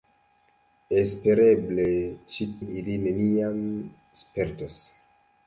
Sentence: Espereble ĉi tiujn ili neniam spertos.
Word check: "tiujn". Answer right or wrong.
wrong